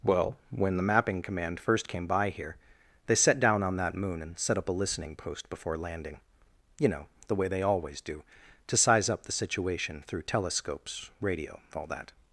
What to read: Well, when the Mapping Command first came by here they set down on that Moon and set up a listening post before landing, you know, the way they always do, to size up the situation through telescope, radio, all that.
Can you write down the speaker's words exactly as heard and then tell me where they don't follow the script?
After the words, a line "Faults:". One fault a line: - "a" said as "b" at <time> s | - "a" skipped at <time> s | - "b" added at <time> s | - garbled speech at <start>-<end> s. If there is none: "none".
Well, when the Mapping Command first came by here they set down on that Moon and set up a listening post before landing, you know, the way they always do, to size up the situation through telescopes, radio, all that.
Faults:
- "telescope" said as "telescopes" at 10.2 s